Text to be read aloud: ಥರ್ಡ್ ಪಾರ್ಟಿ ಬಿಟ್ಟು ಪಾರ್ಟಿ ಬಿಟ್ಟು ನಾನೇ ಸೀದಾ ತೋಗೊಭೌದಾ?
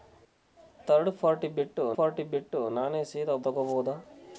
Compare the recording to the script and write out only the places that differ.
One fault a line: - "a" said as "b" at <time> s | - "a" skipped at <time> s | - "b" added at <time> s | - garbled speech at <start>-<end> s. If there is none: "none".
none